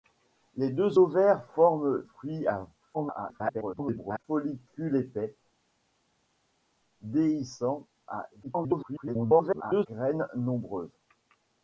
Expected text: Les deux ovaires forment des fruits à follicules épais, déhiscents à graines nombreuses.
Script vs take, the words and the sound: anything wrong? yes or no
yes